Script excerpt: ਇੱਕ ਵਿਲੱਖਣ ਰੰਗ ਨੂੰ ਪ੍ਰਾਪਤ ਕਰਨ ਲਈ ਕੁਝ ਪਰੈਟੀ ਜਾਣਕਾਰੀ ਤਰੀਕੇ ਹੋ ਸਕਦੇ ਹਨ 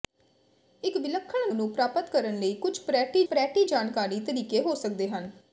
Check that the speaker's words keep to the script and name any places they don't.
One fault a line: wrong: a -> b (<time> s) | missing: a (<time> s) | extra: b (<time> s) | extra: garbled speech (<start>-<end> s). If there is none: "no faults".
missing: ਰੰਗ (1.5 s)
extra: ਪਰੈਟੀ (3.2 s)